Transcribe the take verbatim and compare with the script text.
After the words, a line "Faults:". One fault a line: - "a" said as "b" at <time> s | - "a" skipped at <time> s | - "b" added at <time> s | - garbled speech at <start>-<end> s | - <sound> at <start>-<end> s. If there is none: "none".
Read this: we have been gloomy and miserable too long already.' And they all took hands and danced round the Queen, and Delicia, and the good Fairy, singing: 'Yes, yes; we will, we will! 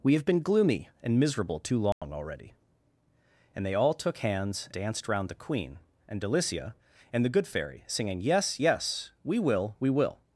we have been gloomy and miserable too long already.' And they all took hands danced round the Queen, and Delicia, and the good Fairy, singing: 'Yes, yes; we will, we will!
Faults:
- dropout at 1.9-2.0 s
- "and" skipped at 4.7 s